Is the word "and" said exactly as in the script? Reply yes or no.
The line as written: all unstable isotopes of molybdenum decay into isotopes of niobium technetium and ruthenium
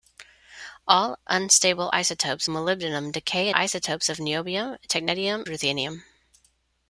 no